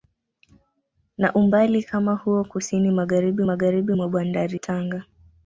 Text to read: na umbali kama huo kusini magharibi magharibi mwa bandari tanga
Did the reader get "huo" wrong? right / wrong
right